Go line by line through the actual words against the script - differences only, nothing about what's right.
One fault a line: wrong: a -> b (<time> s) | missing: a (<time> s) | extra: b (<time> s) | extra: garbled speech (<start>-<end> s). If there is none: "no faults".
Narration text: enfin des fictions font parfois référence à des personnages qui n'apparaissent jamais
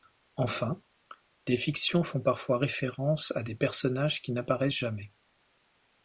no faults